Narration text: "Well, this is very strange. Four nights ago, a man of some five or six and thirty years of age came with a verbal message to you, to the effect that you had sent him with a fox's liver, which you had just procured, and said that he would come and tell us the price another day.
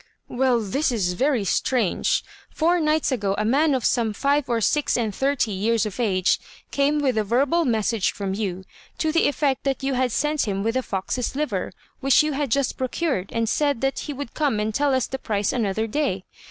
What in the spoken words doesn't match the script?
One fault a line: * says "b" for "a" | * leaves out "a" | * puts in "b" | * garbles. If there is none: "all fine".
* says "from" for "to"